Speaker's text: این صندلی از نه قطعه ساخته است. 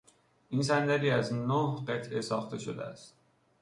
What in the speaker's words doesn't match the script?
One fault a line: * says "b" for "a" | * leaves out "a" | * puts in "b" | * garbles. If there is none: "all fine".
* puts in "شده"